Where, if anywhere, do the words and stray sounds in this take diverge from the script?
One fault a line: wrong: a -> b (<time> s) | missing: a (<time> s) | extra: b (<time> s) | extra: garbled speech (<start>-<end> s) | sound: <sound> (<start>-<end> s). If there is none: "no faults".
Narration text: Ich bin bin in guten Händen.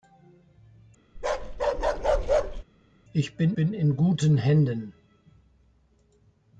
sound: bark (1.2-2.6 s)